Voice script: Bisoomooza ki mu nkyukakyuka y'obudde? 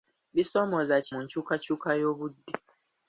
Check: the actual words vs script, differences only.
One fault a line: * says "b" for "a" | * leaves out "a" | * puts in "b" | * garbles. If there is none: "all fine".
all fine